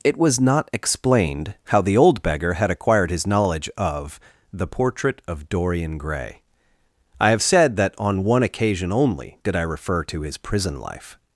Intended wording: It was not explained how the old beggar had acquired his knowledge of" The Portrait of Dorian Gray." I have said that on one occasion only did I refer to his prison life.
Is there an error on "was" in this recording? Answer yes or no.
no